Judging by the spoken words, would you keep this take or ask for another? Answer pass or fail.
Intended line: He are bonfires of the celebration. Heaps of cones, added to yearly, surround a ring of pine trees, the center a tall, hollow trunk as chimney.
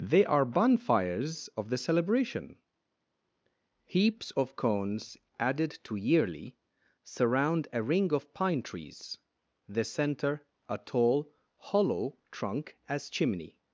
fail